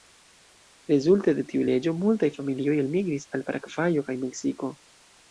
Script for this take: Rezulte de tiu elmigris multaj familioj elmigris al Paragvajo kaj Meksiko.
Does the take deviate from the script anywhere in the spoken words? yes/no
yes